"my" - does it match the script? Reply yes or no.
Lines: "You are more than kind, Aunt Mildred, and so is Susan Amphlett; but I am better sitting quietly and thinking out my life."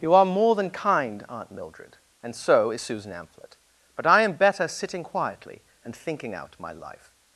yes